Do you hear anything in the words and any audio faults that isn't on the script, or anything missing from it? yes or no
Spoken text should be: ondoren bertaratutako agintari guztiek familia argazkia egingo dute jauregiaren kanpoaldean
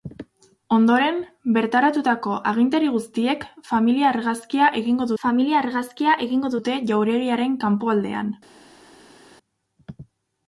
yes